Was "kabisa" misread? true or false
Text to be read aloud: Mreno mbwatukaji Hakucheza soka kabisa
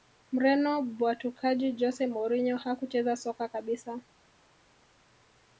false